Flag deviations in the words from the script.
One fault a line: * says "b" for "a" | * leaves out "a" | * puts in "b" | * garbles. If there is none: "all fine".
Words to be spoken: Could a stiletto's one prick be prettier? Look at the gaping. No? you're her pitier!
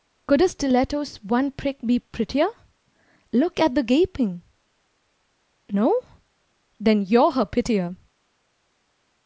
* puts in "then"